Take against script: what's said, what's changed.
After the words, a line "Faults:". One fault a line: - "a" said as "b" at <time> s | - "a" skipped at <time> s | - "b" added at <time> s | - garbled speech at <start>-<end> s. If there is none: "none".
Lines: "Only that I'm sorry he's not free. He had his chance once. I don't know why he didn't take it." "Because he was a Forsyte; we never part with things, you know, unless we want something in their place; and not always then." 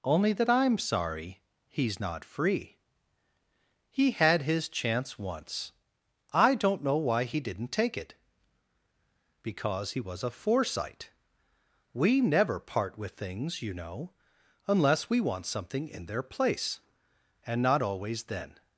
"Only that I'm sorry he's not free. He had his chance once. I don't know why he didn't take it." "Because he was a Forsyte; we never part with things, you know, unless we want something in their place; and not always then."
Faults:
none